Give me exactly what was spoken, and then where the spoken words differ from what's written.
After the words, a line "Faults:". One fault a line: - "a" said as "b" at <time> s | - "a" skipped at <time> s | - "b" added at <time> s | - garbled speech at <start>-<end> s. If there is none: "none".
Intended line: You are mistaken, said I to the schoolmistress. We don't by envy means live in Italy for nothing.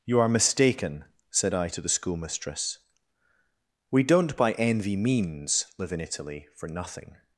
You are mistaken, said I to the schoolmistress. We don't by envy means live in Italy for nothing.
Faults:
none